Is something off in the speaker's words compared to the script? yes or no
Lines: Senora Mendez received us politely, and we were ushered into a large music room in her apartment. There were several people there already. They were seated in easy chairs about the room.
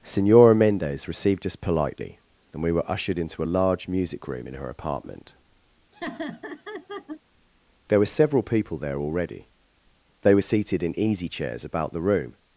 no